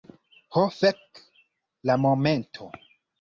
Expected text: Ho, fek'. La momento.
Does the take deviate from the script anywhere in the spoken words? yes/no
no